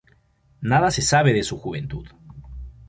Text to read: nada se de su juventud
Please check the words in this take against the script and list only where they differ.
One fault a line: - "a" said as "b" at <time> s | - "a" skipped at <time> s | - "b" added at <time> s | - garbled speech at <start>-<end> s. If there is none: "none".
- "sabe" added at 1.0 s